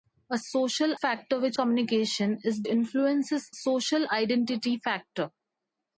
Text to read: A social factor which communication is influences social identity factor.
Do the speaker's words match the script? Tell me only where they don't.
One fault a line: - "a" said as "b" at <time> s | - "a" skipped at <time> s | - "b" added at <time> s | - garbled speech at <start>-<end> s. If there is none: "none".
none